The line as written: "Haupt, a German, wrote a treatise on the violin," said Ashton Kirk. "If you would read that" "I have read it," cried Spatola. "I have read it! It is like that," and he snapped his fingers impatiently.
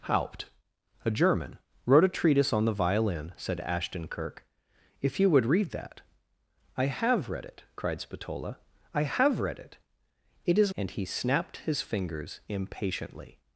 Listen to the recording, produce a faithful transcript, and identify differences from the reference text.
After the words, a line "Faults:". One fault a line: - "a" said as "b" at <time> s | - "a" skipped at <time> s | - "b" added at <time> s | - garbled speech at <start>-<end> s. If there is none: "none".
"Haupt, a German, wrote a treatise on the violin," said Ashton Kirk. "If you would read that" "I have read it," cried Spatola. "I have read it! It is," and he snapped his fingers impatiently.
Faults:
- "like that" skipped at 10.7 s